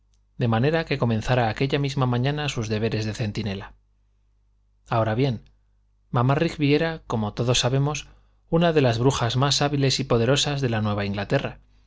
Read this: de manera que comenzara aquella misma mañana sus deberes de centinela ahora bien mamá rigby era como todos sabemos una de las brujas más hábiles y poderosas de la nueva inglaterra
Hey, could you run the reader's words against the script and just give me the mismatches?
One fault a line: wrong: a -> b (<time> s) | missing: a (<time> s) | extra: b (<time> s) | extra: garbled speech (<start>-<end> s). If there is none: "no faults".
no faults